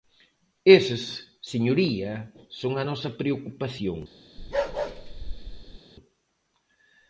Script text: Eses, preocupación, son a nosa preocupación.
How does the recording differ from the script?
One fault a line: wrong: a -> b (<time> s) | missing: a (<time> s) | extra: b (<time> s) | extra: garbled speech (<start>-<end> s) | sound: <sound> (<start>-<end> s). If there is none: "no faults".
wrong: preocupación -> señoría (1.5 s)
sound: bark (4.4-5.8 s)